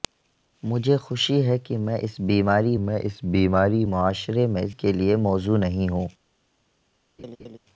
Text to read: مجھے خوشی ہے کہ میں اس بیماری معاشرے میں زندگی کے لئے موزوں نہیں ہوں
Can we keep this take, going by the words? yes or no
no